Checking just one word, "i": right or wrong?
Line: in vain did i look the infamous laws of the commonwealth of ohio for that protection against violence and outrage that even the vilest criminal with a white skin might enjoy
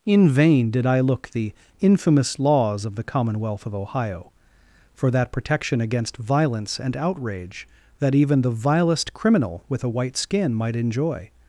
right